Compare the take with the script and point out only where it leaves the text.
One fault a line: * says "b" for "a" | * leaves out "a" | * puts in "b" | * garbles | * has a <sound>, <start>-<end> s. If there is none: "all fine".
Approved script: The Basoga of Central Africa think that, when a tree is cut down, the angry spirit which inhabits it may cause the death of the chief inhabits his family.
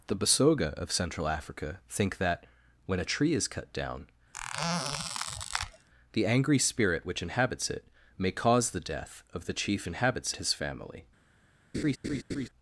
* has a squeak, 4.3-5.9 s
* has a laugh, 11.7-12.5 s